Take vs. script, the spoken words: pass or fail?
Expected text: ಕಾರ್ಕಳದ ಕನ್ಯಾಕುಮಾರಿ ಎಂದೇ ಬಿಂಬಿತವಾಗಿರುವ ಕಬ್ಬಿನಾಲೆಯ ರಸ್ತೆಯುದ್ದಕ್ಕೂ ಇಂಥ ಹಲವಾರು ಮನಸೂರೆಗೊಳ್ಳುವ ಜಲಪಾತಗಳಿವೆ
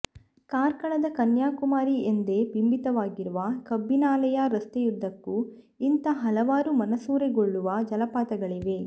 pass